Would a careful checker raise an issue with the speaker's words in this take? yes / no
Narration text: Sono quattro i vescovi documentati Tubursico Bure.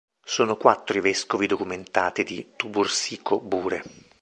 yes